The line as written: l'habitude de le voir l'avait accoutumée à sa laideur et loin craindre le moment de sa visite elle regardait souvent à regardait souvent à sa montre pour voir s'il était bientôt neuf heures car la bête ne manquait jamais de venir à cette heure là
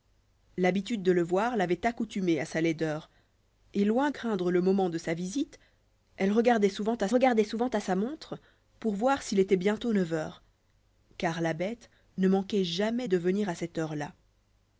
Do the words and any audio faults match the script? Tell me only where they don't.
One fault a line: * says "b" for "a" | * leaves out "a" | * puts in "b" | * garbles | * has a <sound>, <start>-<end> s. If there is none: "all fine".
all fine